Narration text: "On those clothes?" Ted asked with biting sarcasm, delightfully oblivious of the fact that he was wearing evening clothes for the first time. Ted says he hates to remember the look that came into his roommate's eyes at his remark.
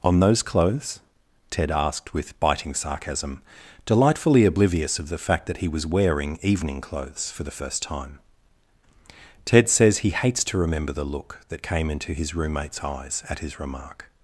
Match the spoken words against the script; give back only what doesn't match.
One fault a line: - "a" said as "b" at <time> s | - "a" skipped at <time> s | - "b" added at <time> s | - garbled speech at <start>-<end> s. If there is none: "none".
none